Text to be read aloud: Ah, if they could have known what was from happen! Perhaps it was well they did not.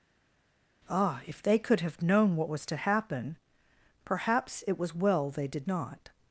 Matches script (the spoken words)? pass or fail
fail